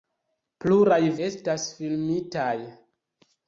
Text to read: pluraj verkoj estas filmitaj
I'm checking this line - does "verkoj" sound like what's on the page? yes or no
no